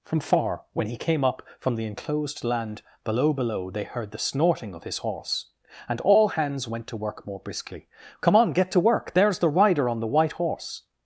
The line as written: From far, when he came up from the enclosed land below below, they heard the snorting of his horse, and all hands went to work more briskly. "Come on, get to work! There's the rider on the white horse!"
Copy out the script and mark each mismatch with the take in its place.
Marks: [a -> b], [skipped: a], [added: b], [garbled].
From far, when he came up from the enclosed land below below, they heard the snorting of his horse, and all hands went to work more briskly. "Come on, get to work! There's the rider on the white horse!"